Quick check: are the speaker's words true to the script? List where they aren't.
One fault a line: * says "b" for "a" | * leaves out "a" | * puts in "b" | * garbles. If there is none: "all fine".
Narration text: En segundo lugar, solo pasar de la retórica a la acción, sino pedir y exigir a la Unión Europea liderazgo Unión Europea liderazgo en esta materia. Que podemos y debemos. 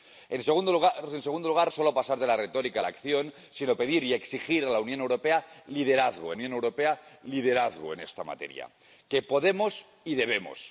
all fine